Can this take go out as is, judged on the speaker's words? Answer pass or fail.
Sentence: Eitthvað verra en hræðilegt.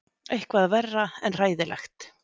pass